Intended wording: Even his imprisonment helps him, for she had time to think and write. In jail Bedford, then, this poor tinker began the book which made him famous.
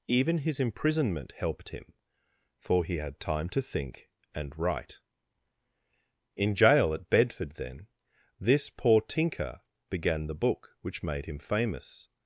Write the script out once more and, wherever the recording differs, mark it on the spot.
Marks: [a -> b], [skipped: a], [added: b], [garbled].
Even his imprisonment [helps -> helped] him, for [she -> he] had time to think and write. In jail [added: at] Bedford, then, this poor tinker began the book which made him famous.